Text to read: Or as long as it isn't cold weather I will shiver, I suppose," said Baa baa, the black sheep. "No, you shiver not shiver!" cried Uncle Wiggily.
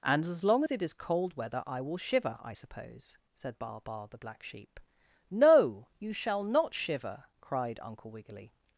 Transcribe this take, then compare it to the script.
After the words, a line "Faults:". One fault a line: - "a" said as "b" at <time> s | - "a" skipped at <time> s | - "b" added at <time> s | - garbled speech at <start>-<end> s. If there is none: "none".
And as long as it is cold weather I will shiver, I suppose," said Baa baa, the black sheep. "No, you shall not shiver!" cried Uncle Wiggily.
Faults:
- "Or" said as "And" at 0.0 s
- "isn't" said as "is" at 0.8 s
- "shiver" said as "shall" at 6.1 s